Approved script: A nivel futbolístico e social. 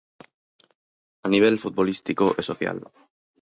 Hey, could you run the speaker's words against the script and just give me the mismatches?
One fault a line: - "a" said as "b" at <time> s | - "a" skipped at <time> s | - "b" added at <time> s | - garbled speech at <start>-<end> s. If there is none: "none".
none